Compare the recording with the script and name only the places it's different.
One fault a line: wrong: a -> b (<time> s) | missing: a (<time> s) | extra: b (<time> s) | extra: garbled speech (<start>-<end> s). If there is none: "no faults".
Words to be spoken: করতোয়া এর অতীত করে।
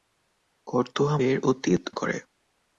no faults